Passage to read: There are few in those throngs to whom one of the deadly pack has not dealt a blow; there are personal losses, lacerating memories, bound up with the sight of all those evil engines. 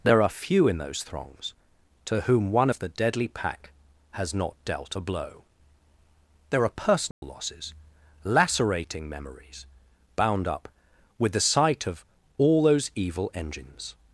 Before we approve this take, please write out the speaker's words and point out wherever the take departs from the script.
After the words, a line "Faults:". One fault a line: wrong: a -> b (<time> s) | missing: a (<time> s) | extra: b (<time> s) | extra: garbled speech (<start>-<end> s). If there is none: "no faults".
There are few in those throngs to whom one of the deadly pack has not dealt a blow; there are personal losses, lacerating memories, bound up with the sight of all those evil engines.
Faults:
no faults